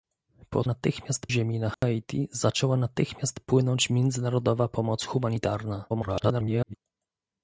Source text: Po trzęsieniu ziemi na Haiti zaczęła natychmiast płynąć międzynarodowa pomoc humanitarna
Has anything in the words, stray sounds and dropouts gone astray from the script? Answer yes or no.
yes